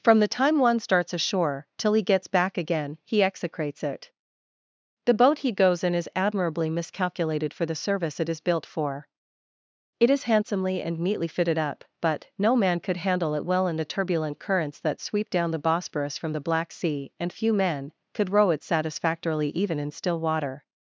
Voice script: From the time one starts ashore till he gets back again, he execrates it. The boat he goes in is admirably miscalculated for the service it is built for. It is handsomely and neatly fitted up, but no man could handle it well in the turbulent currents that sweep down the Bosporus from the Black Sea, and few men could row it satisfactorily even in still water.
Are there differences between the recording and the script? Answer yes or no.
no